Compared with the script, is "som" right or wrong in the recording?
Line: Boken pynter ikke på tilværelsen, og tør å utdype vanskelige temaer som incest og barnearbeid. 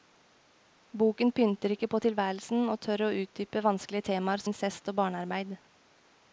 wrong